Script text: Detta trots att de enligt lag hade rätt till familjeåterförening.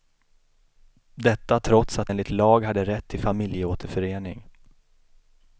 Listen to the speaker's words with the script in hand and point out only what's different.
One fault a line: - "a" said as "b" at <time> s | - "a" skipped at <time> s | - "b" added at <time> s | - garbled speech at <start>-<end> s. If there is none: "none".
- "de" skipped at 2.1 s